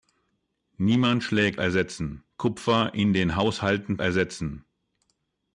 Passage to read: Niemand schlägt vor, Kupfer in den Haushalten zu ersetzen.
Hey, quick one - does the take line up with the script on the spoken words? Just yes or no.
no